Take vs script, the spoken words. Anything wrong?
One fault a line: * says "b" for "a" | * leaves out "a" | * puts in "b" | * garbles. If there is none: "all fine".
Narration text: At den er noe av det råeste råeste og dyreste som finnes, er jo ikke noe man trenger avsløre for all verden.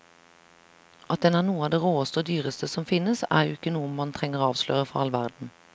* leaves out "råeste"